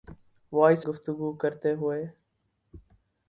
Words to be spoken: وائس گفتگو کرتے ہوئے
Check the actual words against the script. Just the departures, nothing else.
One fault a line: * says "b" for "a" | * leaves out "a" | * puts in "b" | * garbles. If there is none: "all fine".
all fine